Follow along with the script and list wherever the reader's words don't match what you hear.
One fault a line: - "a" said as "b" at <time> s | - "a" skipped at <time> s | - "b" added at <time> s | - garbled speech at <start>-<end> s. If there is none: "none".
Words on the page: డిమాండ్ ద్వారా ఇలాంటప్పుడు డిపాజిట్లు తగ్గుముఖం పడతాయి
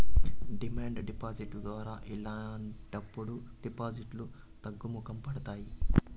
- "డిపాజిట్" added at 1.1 s